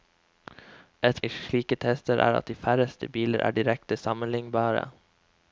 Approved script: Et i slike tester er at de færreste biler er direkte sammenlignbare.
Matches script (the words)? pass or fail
pass